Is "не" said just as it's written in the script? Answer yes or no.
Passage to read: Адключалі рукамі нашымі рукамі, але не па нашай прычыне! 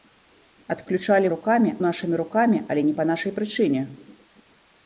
yes